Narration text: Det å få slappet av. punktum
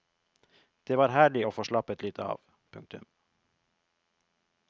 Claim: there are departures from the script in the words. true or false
true